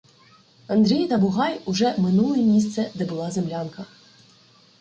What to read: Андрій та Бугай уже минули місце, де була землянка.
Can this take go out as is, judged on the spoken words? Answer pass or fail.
pass